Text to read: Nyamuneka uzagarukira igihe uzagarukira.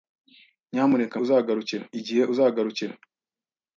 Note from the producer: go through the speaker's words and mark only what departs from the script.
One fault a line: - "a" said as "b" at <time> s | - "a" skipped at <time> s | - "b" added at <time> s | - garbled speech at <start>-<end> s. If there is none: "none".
none